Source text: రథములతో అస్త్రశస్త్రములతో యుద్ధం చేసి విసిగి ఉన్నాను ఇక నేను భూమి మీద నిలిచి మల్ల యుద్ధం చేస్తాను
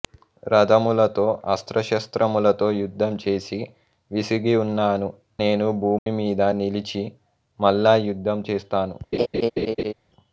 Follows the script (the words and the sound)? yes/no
no